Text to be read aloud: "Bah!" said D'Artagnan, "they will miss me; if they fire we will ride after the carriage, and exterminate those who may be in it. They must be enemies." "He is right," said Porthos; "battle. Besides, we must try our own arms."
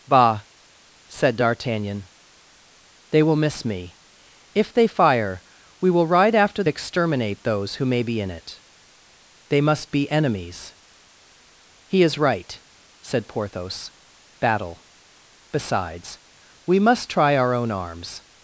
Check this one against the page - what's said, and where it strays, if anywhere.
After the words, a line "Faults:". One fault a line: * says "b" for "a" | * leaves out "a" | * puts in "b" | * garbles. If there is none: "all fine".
"Bah!" said D'Artagnan, "they will miss me; if they fire we will ride after exterminate those who may be in it. They must be enemies." "He is right," said Porthos; "battle. Besides, we must try our own arms."
Faults:
* leaves out "the carriage and"